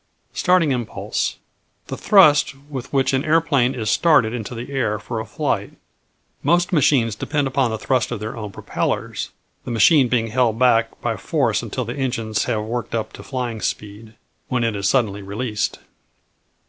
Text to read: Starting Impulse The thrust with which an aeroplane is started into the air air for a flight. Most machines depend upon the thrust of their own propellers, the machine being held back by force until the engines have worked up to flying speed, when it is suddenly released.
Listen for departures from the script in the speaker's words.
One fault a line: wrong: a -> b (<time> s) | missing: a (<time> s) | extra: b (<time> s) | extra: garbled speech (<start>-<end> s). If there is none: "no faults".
missing: air (5.0 s)